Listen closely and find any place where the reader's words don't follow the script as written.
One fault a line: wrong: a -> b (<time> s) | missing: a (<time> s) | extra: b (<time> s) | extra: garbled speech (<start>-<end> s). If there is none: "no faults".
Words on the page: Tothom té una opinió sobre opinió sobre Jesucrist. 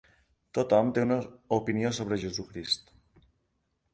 missing: opinió sobre (2.2 s)